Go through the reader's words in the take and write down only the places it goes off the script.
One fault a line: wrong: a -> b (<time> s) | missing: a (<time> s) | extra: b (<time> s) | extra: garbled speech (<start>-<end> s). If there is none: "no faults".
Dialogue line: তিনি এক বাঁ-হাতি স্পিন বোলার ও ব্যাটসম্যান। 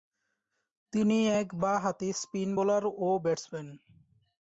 no faults